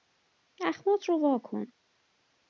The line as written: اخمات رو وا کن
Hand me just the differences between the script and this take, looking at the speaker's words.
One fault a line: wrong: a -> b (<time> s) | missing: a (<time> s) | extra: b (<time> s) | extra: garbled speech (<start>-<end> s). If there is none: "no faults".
no faults